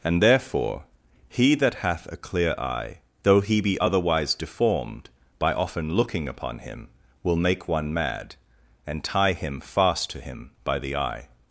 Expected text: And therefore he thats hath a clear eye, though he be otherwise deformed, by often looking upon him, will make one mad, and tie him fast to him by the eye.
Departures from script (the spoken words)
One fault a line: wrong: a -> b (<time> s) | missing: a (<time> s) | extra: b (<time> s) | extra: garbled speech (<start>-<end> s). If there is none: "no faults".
wrong: thats -> that (1.6 s)